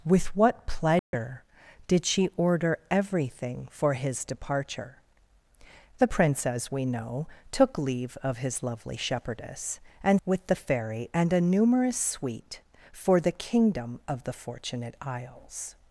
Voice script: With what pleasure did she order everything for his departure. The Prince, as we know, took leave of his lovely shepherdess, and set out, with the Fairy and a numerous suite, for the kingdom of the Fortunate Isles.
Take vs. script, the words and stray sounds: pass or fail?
fail